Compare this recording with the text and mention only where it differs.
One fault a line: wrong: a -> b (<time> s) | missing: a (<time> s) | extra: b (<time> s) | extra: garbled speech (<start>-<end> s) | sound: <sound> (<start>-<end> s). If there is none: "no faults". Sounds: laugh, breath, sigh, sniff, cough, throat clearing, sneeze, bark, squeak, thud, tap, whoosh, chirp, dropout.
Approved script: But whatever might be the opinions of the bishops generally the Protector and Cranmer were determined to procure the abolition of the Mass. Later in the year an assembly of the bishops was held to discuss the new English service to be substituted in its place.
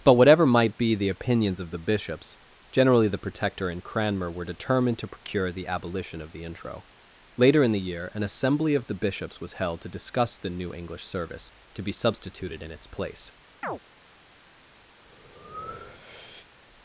wrong: Mass -> Intro (6.4 s)
sound: chirp (13.6-13.8 s)
sound: breath (15.0-16.5 s)